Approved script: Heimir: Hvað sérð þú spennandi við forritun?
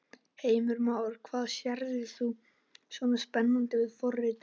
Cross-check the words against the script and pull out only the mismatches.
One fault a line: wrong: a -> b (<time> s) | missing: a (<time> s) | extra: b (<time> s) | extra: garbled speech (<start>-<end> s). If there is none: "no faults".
extra: Már (0.9 s)
extra: svona (3.0 s)